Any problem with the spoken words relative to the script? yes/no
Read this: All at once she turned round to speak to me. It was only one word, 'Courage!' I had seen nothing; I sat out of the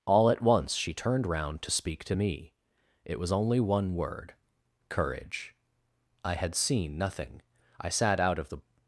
no